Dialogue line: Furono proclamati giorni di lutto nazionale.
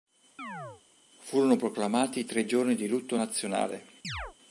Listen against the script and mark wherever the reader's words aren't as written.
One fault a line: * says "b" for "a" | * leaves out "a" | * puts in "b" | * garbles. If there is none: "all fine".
* puts in "tre"